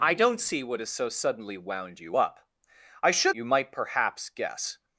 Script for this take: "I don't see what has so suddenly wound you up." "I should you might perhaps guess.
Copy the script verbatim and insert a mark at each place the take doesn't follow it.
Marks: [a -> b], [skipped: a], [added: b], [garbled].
"I don't see what has so suddenly wound you up." "I should you might perhaps guess.